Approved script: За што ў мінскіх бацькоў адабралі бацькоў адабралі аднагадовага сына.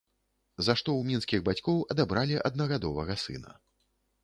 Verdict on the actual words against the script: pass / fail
fail